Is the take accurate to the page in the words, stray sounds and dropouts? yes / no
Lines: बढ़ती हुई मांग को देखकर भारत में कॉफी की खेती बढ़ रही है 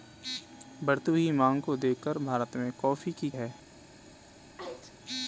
no